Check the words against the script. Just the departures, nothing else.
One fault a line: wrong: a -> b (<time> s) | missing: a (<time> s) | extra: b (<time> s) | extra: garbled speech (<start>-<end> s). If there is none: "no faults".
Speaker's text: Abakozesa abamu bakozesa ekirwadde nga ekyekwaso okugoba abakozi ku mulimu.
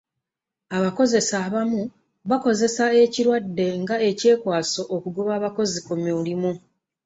no faults